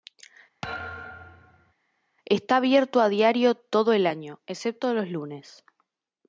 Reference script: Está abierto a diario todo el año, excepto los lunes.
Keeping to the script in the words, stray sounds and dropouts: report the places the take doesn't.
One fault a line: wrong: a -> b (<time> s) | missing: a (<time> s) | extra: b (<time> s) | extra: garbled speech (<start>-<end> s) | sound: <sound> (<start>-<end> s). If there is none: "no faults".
sound: thud (0.6-1.7 s)